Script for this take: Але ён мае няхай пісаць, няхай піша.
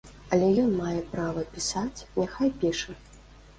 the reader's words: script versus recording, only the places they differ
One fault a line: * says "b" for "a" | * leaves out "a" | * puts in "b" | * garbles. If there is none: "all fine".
* says "права" for "няхай"